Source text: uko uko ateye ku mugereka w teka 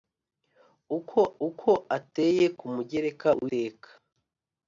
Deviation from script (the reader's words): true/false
false